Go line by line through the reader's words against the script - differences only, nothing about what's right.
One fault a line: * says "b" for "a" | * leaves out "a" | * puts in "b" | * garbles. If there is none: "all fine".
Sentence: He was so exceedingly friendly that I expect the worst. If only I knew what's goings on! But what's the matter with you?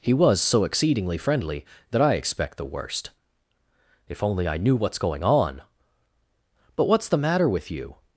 * says "going" for "goings"